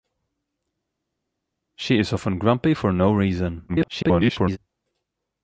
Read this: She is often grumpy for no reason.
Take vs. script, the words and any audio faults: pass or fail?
fail